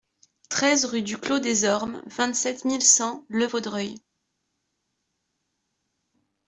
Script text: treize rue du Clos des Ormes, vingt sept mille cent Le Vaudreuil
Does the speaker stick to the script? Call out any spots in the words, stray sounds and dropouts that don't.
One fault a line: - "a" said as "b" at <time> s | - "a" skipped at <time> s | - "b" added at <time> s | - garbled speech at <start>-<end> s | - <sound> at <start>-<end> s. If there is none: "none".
none